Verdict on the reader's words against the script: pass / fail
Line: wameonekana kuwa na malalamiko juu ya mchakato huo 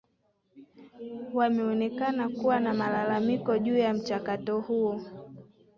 pass